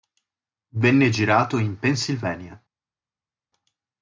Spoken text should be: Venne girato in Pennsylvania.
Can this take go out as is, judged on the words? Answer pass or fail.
pass